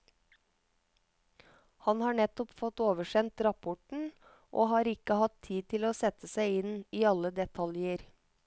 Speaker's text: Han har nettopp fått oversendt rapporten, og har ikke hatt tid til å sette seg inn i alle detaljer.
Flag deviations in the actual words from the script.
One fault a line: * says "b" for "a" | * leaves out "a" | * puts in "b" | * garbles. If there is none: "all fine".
all fine